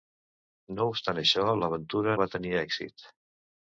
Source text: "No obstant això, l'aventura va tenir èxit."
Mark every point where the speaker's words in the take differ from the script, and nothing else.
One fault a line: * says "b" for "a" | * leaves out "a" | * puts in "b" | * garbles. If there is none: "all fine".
all fine